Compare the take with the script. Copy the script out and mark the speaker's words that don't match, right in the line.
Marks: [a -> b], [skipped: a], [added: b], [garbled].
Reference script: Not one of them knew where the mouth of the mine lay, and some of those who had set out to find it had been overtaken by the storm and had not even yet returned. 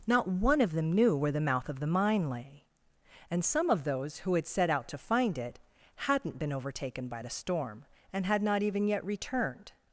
Not one of them knew where the mouth of the mine lay, and some of those who had set out to find it [had -> hadn't] been overtaken by the storm and had not even yet returned.